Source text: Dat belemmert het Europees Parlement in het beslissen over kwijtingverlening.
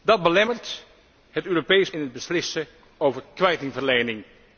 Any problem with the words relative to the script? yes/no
yes